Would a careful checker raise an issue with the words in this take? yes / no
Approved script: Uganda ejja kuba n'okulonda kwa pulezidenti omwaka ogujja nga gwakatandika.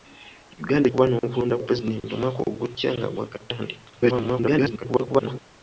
yes